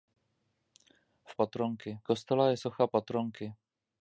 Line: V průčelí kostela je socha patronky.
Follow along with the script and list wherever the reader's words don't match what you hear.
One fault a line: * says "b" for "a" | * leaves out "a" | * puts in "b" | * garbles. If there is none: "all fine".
* says "patronky" for "průčelí"